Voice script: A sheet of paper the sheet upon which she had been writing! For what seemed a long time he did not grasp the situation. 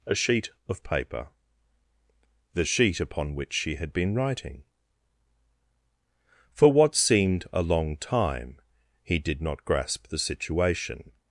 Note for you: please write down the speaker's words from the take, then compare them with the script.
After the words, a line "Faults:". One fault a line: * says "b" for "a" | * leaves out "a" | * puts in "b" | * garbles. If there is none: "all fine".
A sheet of paper the sheet upon which she had been writing! For what seemed a long time he did not grasp the situation.
Faults:
all fine